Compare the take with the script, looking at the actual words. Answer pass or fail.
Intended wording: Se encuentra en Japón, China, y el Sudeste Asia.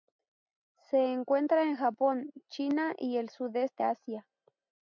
pass